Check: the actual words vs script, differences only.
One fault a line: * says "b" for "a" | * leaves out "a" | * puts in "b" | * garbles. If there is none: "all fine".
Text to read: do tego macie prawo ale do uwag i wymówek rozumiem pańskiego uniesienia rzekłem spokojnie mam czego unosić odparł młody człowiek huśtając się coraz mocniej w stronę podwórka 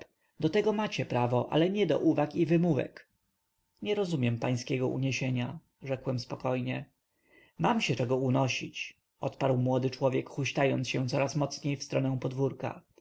* puts in "nie"
* puts in "nie"
* puts in "się"